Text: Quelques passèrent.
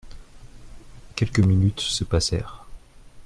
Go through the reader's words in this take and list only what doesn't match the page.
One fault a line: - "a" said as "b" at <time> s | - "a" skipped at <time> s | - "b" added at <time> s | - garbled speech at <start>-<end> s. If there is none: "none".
- "minutes se" added at 1.4 s